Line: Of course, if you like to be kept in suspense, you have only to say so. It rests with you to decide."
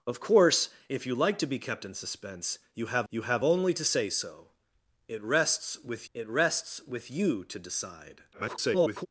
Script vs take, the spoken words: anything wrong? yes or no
yes